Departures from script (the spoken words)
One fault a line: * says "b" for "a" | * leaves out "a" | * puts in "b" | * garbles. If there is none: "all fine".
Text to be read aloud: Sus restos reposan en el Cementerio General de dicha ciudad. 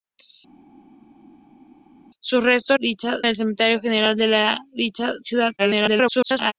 * says "dicha" for "reposan"
* garbles